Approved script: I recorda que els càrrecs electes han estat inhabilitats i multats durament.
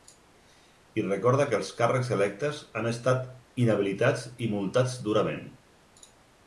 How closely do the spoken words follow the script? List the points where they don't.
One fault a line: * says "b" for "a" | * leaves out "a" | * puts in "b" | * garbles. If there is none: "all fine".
all fine